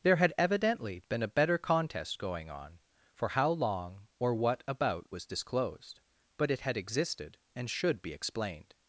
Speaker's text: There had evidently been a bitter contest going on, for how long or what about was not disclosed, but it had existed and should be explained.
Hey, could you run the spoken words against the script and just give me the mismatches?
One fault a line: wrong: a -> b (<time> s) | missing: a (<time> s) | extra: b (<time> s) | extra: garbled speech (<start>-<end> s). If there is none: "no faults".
wrong: bitter -> better (1.3 s)
missing: not (5.3 s)